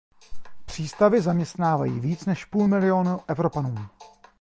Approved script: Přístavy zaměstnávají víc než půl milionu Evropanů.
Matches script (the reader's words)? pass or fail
pass